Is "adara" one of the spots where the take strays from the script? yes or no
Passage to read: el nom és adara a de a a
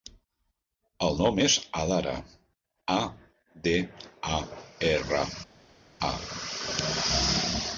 no